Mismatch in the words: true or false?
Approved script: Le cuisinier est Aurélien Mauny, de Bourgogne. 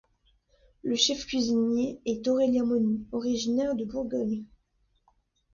true